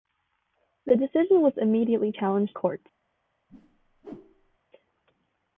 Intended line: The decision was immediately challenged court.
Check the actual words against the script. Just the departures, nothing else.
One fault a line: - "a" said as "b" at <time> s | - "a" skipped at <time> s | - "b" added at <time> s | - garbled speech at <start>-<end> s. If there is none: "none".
none